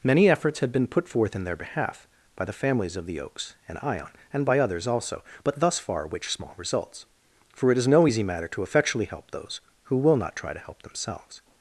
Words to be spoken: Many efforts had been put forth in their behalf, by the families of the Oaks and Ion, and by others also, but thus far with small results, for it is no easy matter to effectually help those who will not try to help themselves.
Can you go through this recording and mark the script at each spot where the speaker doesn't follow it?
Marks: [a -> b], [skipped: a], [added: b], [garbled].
Many efforts had been put forth in their behalf, by the families of the Oaks and Ion, and by others also, but thus far [with -> which] small results, for it is no easy matter to effectually help those who will not try to help themselves.